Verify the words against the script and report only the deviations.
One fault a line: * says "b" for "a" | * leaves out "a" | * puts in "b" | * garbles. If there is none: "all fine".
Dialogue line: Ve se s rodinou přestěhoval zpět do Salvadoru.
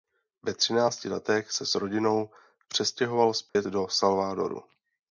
* puts in "třinácti letech"